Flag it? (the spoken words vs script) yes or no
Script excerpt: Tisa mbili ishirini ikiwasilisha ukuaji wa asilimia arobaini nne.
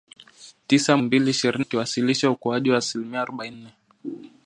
no